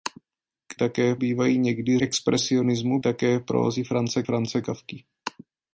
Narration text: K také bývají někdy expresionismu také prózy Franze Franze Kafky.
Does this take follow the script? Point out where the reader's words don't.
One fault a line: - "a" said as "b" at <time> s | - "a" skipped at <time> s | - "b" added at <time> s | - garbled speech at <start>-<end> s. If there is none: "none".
none